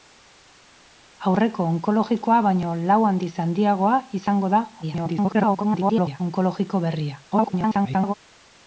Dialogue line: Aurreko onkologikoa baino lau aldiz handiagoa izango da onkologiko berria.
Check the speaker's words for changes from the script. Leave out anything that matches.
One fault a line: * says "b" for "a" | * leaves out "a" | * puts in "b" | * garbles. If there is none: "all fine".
* garbles
* garbles